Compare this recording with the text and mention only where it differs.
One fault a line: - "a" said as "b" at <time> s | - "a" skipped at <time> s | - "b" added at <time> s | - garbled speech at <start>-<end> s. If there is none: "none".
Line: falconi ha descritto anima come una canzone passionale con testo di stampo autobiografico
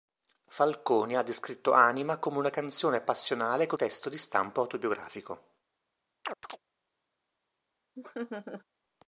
none